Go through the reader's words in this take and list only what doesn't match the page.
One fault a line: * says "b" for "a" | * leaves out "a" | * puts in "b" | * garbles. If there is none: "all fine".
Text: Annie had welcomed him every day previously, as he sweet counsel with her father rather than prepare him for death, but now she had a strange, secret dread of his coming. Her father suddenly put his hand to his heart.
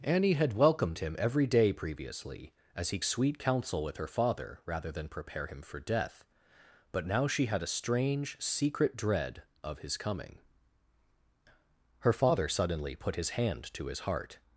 all fine